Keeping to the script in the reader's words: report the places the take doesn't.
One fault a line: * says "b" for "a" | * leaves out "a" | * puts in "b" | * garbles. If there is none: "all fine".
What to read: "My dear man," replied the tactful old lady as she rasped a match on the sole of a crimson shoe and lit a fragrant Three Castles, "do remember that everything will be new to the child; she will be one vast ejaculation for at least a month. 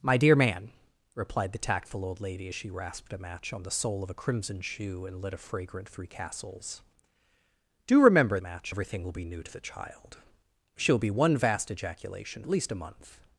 * says "match" for "that"
* leaves out "for"